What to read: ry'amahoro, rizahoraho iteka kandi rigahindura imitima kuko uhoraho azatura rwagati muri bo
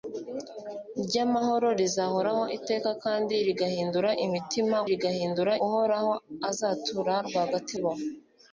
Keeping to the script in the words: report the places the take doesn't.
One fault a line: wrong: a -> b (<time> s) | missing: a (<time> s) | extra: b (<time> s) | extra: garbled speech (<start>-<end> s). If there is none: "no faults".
wrong: kuko -> rigahindura (4.9 s)
missing: muri (7.7 s)